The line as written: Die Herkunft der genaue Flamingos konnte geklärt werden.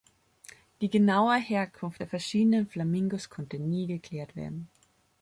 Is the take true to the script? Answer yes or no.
no